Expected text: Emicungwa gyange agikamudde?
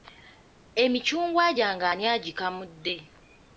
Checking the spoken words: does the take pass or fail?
fail